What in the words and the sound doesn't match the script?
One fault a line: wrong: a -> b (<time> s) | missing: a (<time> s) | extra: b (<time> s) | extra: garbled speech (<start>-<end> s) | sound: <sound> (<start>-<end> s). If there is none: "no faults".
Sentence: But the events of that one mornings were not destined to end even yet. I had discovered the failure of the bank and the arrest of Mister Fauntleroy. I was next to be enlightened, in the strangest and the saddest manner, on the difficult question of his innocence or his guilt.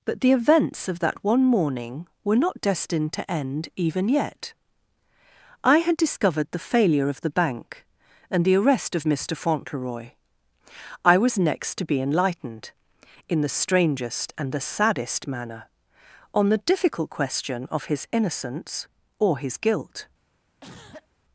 wrong: mornings -> morning (1.4 s)
sound: cough (20.6-21.1 s)